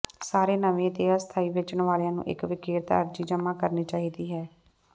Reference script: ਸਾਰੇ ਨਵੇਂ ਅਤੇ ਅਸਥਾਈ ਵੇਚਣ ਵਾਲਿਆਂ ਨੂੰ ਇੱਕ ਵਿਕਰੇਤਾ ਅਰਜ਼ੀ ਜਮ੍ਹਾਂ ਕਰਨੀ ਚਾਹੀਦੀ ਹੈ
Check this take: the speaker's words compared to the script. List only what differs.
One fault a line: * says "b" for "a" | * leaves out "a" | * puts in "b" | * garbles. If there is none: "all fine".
all fine